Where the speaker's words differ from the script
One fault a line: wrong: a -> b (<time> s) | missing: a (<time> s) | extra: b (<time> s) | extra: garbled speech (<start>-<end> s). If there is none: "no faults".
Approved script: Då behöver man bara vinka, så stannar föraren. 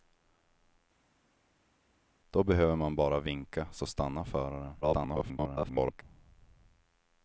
extra: garbled speech (4.8-6.0 s)